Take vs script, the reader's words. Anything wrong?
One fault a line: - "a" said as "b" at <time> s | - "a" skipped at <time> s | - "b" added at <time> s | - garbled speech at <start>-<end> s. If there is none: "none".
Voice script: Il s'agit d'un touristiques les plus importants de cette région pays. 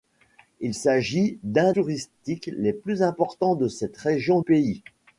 none